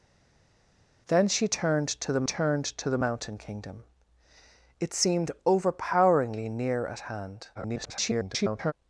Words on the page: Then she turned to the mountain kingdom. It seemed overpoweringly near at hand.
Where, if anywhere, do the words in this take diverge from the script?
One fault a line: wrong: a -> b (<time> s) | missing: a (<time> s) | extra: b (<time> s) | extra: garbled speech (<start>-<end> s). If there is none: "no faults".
extra: turned to the (2.2 s)
extra: garbled speech (7.5-8.7 s)